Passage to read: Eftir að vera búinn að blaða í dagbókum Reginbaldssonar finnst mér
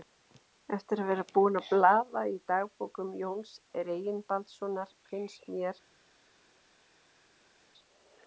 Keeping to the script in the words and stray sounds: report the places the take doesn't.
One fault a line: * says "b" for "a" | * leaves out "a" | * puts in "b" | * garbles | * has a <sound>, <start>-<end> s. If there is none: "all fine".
* puts in "Jóns"